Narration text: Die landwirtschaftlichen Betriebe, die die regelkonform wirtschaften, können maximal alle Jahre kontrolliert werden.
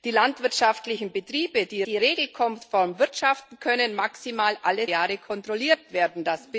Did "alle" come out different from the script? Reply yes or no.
no